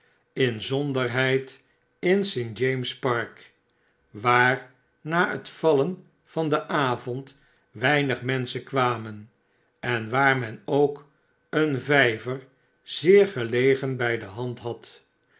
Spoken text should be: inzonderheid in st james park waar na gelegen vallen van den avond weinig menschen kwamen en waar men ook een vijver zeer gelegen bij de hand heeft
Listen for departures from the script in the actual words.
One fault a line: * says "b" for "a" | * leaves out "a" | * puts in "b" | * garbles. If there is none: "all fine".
* says "het" for "gelegen"
* says "had" for "heeft"